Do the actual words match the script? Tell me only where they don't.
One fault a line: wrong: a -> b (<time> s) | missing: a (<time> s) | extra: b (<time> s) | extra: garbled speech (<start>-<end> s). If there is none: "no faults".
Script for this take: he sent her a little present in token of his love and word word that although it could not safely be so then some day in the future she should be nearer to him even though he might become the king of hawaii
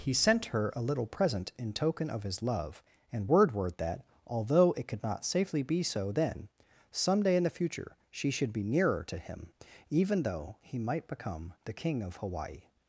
no faults